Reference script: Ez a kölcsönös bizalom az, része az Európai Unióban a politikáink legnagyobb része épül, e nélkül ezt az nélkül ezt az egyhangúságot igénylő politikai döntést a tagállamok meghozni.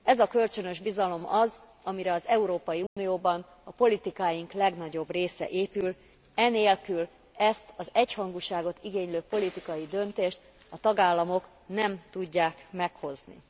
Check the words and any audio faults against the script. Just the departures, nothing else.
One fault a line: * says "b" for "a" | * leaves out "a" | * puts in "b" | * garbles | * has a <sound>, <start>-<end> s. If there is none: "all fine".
* says "amire" for "része"
* has a dropout, 2.9-3.0 s
* leaves out "nélkül ezt az"
* puts in "nem tudják"